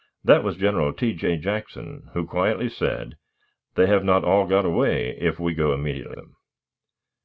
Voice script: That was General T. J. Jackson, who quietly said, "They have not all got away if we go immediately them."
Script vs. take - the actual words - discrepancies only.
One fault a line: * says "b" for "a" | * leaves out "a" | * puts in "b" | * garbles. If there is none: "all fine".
all fine